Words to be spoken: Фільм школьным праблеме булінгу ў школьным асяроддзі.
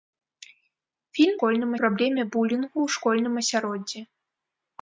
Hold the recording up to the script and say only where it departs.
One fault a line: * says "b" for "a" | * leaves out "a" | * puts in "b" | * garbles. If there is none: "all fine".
all fine